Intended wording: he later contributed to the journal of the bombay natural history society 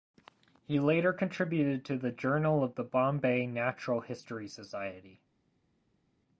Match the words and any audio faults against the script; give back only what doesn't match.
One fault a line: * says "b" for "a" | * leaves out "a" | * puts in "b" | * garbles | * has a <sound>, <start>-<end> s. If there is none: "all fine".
all fine